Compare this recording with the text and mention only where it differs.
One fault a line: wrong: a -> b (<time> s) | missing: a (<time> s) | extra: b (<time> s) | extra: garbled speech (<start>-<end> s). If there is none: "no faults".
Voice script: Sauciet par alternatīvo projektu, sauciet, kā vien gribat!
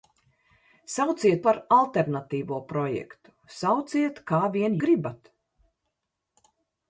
no faults